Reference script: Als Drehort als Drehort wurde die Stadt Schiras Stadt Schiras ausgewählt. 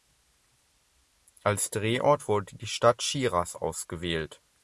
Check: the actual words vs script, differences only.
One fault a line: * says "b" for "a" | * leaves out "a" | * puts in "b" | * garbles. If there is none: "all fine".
* leaves out "als Drehort"
* leaves out "Stadt Schiras"